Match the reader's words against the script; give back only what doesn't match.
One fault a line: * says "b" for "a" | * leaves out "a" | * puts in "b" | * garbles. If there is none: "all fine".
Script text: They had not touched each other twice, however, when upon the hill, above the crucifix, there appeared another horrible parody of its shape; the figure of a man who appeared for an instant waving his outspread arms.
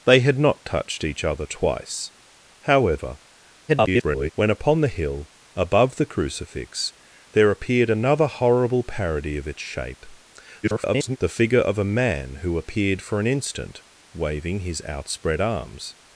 * garbles
* garbles